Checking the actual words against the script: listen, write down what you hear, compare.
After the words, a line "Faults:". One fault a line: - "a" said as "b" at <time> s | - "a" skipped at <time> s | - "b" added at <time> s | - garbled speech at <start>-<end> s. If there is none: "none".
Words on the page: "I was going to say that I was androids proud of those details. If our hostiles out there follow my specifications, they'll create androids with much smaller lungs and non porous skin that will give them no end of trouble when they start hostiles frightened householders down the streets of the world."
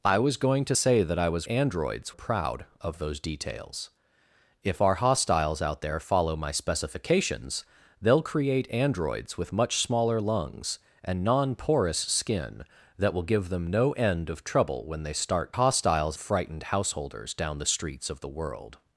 "I was going to say that I was androids proud of those details. If our hostiles out there follow my specifications, they'll create androids with much smaller lungs and non porous skin that will give them no end of trouble when they start hostiles frightened householders down the streets of the world."
Faults:
none